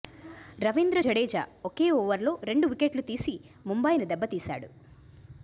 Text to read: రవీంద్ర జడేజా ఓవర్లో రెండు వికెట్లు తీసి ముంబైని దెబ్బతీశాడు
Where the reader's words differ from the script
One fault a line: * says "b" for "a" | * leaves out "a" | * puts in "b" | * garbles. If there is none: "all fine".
* puts in "ఒకే"